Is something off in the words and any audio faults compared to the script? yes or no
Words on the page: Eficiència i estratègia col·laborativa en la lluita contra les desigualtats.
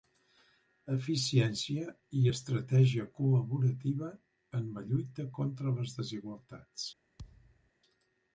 yes